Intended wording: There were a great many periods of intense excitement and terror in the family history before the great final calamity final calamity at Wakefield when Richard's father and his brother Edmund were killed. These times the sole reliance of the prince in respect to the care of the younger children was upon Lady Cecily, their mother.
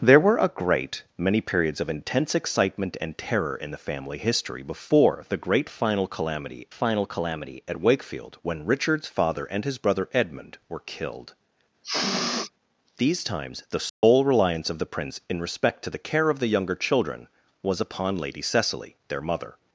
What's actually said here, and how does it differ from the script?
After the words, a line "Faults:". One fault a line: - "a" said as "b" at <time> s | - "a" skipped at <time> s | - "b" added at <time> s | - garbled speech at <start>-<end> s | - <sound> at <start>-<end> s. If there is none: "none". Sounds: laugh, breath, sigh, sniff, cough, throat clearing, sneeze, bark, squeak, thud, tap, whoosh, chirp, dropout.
There were a great many periods of intense excitement and terror in the family history before the great final calamity final calamity at Wakefield when Richard's father and his brother Edmund were killed. These times the sole reliance of the prince in respect to the care of the younger children was upon Lady Cecily, their mother.
Faults:
- sniff at 11.8-12.5 s
- dropout at 13.9-14.0 s